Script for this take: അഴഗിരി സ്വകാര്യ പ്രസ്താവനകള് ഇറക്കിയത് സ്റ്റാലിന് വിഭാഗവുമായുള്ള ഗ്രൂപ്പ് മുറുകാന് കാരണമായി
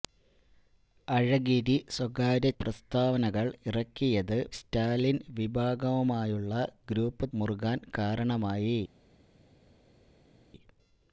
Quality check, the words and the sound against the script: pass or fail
pass